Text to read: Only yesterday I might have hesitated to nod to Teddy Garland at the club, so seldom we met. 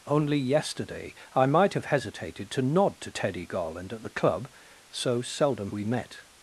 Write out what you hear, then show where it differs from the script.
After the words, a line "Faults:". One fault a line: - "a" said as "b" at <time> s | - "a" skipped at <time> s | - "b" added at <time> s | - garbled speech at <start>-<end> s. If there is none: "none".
Only yesterday I might have hesitated to nod to Teddy Garland at the club, so seldom we met.
Faults:
none